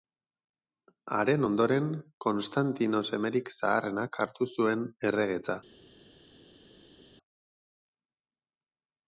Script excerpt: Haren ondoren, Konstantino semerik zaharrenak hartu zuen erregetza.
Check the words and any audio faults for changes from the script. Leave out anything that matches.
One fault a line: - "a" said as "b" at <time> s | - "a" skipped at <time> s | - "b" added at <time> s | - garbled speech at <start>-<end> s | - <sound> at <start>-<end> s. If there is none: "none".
none